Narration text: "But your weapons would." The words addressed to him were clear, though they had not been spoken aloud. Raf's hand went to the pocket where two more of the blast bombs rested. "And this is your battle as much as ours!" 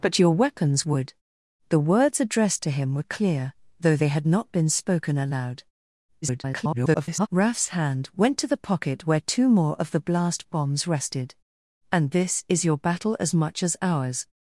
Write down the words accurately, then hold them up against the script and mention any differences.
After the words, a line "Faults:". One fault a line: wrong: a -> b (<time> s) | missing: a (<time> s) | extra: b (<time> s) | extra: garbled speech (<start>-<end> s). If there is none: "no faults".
"But your weapons would." The words addressed to him were clear, though they had not been spoken aloud. [garbled] Raf's hand went to the pocket where two more of the blast bombs rested. "And this is your battle as much as ours!"
Faults:
extra: garbled speech (6.2-7.3 s)